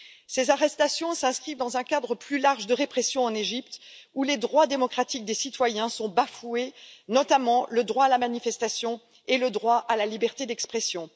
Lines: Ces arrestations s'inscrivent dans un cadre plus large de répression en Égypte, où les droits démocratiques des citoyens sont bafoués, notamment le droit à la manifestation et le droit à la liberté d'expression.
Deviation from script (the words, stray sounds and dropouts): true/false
false